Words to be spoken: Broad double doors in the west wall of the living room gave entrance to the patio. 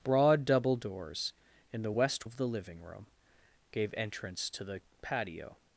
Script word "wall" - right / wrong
wrong